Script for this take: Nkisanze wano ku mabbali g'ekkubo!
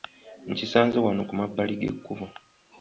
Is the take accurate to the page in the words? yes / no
yes